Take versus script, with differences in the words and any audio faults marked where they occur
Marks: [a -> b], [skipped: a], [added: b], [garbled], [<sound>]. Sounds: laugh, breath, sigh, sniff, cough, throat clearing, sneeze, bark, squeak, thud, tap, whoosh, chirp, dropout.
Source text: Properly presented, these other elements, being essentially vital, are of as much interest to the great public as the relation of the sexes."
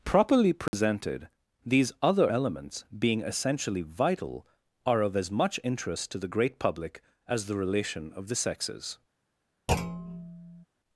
Properly presented, [dropout] these other elements, being essentially vital, are of as much interest to the great public as the relation of the sexes." [thud]